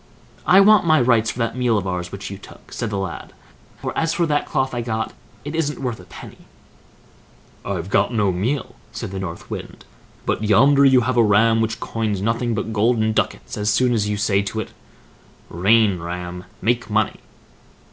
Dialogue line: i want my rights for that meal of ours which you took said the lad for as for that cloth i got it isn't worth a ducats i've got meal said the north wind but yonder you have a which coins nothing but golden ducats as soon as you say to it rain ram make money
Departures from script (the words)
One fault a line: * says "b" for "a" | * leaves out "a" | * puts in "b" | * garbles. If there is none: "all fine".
* says "penny" for "ducats"
* puts in "no"
* puts in "ram"